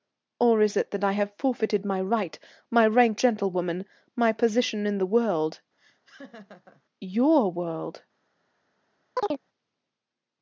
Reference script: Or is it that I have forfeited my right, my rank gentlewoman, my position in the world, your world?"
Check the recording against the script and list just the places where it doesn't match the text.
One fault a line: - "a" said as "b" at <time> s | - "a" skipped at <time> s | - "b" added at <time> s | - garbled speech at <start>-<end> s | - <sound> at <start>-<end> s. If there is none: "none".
- laugh at 5.8-6.8 s
- chirp at 9.2-9.4 s